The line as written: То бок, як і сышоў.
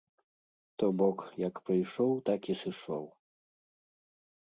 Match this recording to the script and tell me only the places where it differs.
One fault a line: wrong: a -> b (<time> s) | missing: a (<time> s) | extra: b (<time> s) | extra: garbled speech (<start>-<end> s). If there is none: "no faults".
extra: прыйшоў так (1.7 s)